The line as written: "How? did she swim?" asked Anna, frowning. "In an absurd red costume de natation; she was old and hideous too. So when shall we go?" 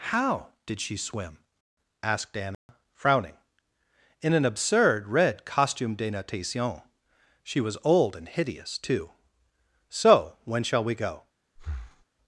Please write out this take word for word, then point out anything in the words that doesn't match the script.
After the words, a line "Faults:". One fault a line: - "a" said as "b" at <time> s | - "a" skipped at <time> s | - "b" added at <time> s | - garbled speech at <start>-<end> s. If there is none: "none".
"How? did she swim?" asked Anna, frowning. "In an absurd red costume de natation; she was old and hideous too. So when shall we go?"
Faults:
none